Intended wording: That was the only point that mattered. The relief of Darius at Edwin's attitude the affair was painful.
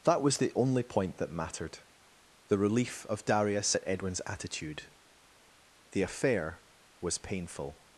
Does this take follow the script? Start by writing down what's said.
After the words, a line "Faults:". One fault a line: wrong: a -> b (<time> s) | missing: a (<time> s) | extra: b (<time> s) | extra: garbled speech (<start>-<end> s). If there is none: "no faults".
That was the only point that mattered. The relief of Darius at Edwin's attitude the affair was painful.
Faults:
no faults